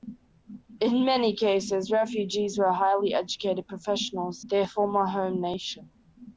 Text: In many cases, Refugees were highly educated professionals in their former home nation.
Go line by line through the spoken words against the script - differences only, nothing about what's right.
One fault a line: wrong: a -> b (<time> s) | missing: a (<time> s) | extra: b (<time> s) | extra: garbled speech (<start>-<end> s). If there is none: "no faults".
missing: in (4.5 s)